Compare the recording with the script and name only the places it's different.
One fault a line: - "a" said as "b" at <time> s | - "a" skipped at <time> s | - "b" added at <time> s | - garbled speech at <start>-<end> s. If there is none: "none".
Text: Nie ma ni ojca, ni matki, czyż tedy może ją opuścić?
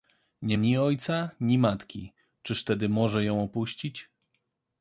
- "ma" skipped at 0.6 s